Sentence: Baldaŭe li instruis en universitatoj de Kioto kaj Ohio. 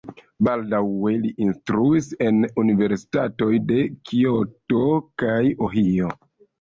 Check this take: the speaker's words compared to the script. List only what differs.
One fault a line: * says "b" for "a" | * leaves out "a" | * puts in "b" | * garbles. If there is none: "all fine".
all fine